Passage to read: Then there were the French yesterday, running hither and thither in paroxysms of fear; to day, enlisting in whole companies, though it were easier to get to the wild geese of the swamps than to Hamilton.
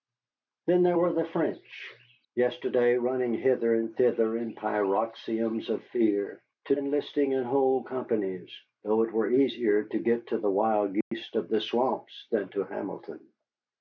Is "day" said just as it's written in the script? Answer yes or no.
no